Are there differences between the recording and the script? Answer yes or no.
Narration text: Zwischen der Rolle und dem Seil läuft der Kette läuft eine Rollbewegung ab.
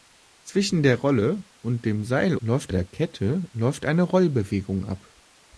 no